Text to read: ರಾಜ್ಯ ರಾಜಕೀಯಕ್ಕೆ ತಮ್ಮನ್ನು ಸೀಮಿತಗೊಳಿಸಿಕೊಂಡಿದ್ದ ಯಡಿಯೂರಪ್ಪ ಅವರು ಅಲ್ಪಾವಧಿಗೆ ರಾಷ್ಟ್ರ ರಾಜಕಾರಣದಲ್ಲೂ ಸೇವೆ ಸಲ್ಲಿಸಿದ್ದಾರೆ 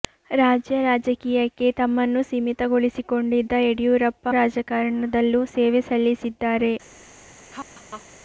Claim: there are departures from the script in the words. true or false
true